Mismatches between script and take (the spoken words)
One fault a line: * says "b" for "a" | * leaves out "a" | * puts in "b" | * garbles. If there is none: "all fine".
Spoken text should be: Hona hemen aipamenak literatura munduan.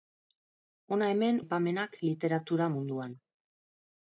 all fine